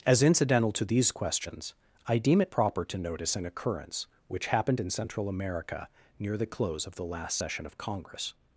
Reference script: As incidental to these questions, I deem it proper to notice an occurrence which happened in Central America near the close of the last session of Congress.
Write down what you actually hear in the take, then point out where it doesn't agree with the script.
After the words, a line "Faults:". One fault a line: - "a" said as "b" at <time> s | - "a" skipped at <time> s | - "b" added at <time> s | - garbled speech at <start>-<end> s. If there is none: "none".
As incidental to these questions, I deem it proper to notice an occurrence which happened in Central America near the close of the last session of Congress.
Faults:
none